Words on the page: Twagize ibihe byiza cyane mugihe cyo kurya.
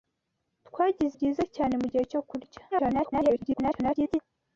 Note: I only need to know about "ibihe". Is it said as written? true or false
false